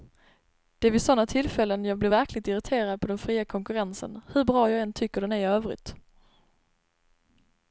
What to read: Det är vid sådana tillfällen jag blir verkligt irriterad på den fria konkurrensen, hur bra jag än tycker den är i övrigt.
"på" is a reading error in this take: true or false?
false